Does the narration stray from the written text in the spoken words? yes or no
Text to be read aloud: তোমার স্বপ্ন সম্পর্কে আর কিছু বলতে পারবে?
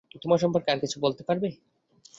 yes